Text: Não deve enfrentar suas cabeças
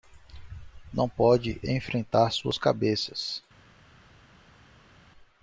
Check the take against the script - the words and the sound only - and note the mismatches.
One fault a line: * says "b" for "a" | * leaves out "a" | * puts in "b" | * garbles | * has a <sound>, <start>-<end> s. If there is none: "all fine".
* says "pode" for "deve"